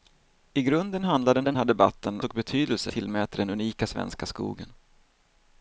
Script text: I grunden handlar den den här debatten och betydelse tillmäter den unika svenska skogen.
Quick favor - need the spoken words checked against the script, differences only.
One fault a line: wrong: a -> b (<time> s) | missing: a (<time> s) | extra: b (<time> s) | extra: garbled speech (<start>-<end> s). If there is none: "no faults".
no faults